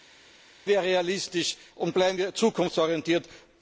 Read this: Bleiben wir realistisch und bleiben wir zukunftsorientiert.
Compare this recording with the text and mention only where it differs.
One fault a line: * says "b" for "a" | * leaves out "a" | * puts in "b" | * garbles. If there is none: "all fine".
all fine